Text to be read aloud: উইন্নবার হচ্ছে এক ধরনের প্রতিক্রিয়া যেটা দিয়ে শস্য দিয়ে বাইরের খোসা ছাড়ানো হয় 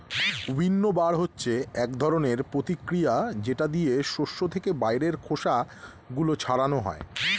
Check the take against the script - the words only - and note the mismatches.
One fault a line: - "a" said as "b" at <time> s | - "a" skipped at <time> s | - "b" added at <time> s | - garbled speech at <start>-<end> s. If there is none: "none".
- "দিয়ে" said as "থেকে" at 4.5 s
- "গুলো" added at 6.2 s